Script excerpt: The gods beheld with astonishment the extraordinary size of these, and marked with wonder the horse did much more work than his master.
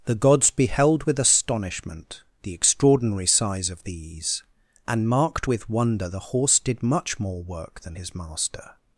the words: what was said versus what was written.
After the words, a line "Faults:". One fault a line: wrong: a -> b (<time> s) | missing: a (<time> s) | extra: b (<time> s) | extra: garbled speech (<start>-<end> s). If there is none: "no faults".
The gods beheld with astonishment the extraordinary size of these, and marked with wonder the horse did much more work than his master.
Faults:
no faults